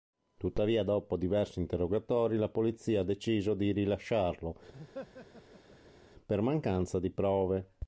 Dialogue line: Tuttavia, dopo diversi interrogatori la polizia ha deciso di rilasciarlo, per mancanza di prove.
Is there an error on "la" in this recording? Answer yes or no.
no